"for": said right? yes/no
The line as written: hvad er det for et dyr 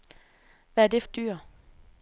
no